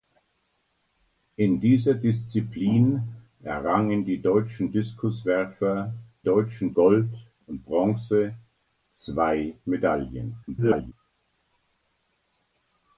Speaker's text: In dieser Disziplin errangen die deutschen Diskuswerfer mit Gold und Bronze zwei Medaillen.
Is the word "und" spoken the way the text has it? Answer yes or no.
yes